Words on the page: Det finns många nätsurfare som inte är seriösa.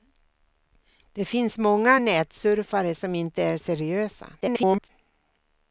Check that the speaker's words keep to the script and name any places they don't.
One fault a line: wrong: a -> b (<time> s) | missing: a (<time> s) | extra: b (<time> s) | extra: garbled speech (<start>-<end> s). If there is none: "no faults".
extra: garbled speech (4.4-4.9 s)